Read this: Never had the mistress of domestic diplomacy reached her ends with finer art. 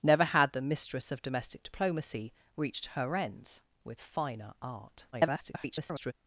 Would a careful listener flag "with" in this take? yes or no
no